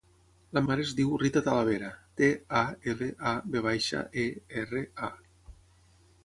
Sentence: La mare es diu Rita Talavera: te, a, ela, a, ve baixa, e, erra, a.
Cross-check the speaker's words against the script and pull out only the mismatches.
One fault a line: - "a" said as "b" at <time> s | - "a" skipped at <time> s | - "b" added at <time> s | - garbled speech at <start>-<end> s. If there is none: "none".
none